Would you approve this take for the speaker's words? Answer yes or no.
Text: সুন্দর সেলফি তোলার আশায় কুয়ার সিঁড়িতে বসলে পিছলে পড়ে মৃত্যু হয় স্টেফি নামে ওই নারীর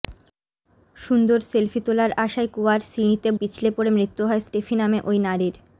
no